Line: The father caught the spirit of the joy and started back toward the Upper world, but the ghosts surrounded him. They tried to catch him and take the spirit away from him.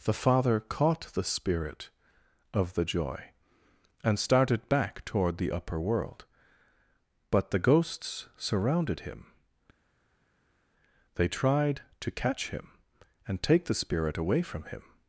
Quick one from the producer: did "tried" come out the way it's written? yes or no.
yes